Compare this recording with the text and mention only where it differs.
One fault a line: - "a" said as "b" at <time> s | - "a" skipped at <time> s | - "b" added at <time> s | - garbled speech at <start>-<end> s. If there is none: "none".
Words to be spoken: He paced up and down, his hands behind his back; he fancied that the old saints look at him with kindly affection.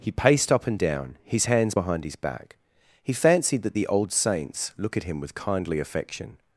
none